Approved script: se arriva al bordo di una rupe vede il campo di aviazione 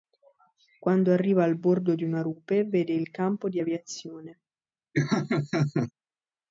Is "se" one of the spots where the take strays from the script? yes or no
yes